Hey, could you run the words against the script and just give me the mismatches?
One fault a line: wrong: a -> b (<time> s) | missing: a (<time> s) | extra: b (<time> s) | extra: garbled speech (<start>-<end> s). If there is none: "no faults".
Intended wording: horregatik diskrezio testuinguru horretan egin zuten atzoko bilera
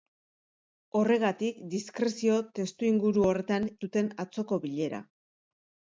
missing: egin (3.7 s)